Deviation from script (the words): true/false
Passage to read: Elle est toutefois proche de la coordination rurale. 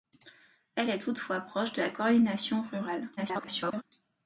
true